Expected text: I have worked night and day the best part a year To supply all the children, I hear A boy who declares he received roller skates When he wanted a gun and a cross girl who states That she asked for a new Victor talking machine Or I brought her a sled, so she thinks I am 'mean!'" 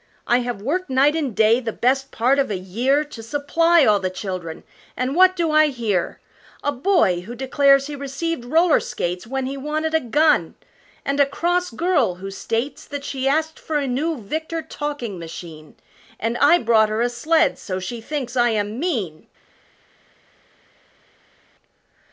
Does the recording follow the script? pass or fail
fail